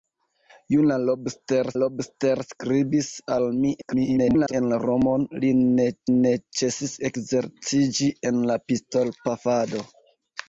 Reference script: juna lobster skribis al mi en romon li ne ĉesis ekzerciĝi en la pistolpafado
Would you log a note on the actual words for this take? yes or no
yes